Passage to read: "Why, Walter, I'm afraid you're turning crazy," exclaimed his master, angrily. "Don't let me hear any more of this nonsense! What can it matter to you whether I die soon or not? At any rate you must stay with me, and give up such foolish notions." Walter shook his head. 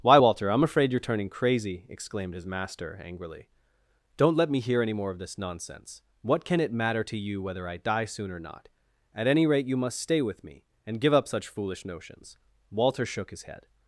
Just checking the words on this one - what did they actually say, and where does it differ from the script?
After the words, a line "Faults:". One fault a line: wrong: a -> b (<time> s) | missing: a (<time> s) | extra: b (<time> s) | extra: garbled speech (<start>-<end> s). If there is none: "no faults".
"Why, Walter, I'm afraid you're turning crazy," exclaimed his master, angrily. "Don't let me hear any more of this nonsense! What can it matter to you whether I die soon or not? At any rate you must stay with me, and give up such foolish notions." Walter shook his head.
Faults:
no faults